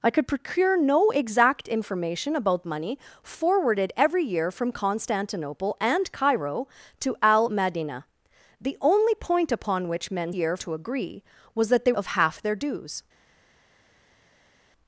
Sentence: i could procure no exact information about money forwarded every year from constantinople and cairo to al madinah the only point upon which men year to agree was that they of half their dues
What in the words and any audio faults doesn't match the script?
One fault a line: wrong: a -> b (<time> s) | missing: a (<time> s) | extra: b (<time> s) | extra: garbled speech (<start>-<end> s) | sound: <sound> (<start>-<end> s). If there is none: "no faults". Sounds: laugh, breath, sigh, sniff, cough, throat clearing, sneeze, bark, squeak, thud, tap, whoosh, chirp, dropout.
no faults